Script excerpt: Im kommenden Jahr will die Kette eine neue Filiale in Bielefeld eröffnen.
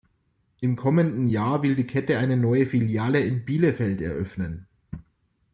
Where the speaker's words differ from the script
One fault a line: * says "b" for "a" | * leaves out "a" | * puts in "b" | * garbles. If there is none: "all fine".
all fine